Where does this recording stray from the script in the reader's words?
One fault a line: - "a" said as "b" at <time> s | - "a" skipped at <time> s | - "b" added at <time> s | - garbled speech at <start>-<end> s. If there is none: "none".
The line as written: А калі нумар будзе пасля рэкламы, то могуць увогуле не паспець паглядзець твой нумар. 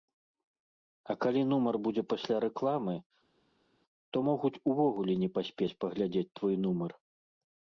none